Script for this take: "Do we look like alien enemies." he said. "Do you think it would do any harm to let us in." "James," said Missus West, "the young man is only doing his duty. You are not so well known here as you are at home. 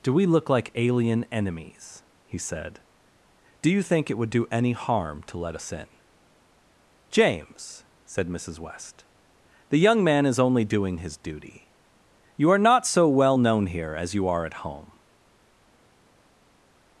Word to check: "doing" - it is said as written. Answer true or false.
true